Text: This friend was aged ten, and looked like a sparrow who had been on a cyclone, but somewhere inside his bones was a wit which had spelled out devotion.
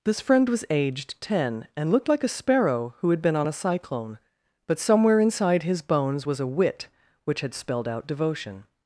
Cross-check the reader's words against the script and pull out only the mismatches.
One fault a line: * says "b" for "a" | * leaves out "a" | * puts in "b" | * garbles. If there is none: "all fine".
all fine